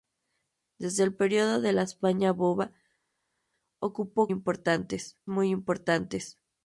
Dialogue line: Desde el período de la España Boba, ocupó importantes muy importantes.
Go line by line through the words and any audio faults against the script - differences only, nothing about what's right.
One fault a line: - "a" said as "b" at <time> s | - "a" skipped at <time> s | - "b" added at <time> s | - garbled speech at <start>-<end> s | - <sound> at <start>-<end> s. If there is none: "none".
none